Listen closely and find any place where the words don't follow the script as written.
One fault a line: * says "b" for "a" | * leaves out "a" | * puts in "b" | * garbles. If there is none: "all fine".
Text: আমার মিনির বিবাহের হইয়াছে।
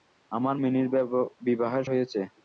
all fine